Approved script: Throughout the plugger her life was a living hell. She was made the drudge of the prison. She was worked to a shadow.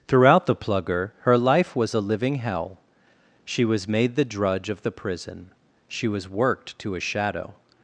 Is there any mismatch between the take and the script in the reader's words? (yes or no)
no